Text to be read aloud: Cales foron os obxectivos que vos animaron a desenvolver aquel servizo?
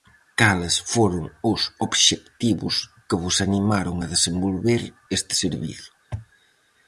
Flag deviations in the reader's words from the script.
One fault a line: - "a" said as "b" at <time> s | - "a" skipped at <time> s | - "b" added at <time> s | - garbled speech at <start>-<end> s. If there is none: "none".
- "aquel" said as "este" at 5.2 s